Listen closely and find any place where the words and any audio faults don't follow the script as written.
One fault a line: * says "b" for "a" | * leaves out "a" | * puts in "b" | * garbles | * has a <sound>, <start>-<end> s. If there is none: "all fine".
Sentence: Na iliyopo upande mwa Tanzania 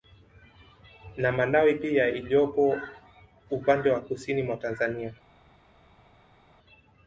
* puts in "malawi pia"
* puts in "wa Kusini"